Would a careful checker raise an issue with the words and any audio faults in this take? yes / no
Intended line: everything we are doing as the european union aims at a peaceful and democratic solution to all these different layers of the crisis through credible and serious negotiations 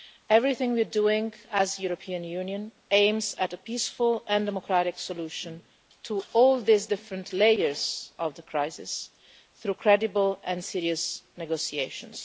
no